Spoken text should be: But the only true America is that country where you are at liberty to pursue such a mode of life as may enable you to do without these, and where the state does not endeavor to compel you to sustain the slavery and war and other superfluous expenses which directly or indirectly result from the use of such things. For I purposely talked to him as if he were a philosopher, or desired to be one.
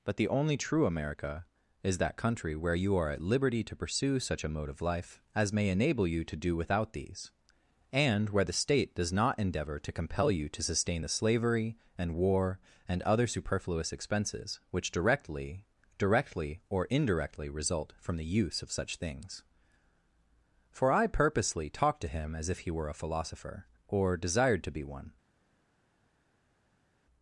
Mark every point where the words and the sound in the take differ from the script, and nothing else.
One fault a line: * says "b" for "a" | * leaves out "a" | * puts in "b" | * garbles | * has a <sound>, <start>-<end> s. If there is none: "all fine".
* puts in "directly"